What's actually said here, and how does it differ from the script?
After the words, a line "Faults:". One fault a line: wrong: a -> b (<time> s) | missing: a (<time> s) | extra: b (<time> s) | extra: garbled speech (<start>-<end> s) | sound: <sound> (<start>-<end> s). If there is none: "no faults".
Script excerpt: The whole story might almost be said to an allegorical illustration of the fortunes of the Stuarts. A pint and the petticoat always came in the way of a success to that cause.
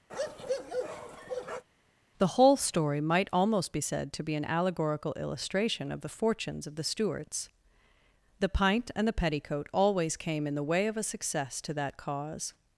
The whole story might almost be said to be an allegorical illustration of the fortunes of the Stuarts. The pint and the petticoat always came in the way of a success to that cause.
Faults:
sound: bark (0.1-1.6 s)
extra: be (4.2 s)
wrong: A -> The (8.4 s)